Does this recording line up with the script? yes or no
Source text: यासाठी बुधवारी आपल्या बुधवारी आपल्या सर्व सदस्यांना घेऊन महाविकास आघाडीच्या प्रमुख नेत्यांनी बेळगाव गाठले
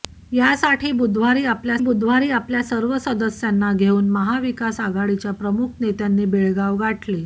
yes